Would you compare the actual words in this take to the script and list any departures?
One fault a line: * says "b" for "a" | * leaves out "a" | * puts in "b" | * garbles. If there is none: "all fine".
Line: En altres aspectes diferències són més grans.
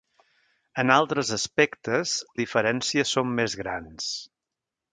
all fine